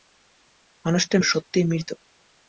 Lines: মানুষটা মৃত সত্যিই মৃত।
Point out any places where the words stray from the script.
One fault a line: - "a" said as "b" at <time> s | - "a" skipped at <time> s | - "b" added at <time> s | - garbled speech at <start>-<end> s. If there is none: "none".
- "মৃত" skipped at 1.2 s